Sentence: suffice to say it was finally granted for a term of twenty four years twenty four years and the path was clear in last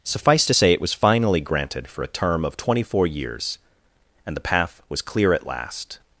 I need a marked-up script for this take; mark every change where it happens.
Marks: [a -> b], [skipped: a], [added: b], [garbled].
suffice to say it was finally granted for a term of twenty four years [skipped: twenty four years] and the path was clear [in -> at] last